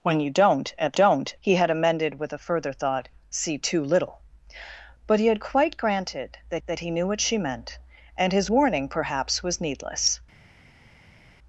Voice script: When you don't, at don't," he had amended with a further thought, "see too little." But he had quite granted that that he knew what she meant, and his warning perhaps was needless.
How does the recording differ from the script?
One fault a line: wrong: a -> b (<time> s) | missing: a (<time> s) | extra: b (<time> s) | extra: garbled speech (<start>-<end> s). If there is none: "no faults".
no faults